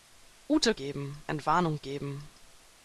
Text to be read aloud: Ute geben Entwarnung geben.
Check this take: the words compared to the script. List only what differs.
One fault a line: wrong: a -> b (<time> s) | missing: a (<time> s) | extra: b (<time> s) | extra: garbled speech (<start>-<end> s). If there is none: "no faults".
no faults